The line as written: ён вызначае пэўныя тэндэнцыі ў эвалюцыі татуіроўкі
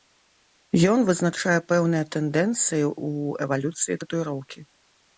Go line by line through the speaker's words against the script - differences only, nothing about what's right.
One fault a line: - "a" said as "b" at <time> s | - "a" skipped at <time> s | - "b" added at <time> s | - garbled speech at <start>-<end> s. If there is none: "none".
none